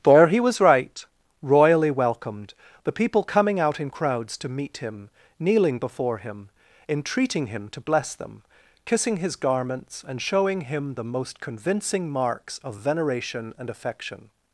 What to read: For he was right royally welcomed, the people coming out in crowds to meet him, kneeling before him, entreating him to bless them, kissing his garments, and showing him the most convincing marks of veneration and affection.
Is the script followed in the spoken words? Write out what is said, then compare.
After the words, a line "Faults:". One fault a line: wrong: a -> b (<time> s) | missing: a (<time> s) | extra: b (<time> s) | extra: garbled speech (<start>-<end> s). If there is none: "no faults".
For he was right royally welcomed, the people coming out in crowds to meet him, kneeling before him, entreating him to bless them, kissing his garments, and showing him the most convincing marks of veneration and affection.
Faults:
no faults